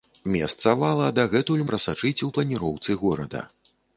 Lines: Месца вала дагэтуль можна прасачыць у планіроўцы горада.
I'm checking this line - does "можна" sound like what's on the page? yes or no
no